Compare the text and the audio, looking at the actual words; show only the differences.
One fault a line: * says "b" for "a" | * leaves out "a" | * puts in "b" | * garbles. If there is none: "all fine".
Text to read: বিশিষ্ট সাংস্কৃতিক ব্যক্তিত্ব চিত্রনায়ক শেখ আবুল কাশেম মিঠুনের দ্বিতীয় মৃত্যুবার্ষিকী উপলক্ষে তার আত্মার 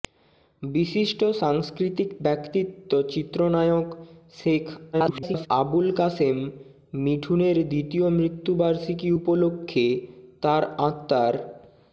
* garbles